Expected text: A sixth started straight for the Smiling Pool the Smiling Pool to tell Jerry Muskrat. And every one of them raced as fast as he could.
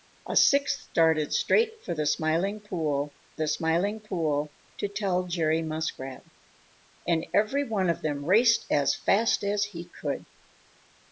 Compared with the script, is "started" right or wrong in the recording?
right